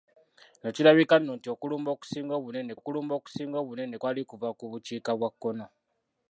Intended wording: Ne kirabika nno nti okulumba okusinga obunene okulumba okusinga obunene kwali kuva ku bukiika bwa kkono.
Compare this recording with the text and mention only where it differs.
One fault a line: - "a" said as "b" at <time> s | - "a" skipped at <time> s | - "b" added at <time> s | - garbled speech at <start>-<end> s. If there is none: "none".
none